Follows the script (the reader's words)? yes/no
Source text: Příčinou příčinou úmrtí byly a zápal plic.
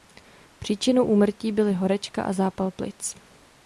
no